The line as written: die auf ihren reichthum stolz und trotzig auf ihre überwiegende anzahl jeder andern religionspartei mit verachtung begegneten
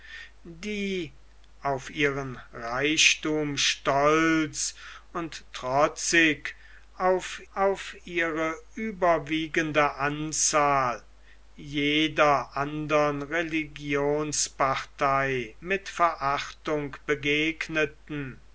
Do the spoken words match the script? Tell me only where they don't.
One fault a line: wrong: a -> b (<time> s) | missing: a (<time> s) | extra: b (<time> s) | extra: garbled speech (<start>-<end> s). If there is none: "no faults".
extra: auf (7.5 s)